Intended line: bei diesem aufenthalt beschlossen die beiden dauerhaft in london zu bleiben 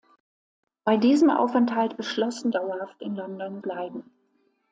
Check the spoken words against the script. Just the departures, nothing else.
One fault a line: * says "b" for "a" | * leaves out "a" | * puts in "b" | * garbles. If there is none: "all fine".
* leaves out "die beiden"
* leaves out "zu"